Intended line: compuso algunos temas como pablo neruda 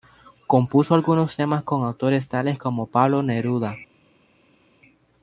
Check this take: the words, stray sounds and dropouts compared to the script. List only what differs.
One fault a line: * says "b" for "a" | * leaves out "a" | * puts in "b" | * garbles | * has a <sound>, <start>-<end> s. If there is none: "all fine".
* puts in "con autores tales"